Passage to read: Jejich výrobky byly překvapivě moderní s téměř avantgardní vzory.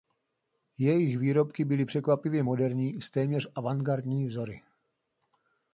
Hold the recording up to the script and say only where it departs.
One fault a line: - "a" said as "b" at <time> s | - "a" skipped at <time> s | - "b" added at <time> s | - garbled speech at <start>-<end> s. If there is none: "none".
none